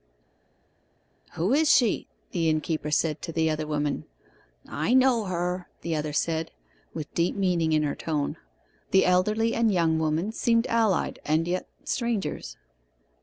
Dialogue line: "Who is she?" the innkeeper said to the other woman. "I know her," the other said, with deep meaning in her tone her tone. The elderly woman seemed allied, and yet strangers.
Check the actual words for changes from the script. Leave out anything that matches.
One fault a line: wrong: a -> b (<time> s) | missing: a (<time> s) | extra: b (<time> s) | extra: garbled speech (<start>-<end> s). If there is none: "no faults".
wrong: her tone The elderly -> The elderly and young (8.9 s)